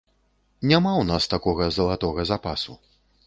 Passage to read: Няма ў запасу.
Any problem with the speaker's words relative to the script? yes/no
yes